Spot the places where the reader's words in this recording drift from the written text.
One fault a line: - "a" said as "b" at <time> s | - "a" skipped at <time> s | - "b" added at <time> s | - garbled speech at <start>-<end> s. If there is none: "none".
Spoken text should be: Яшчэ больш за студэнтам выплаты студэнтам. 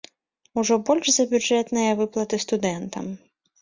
- "Яшчэ" said as "Ужо" at 0.6 s
- "студэнтам" said as "бюджэтныя" at 1.4 s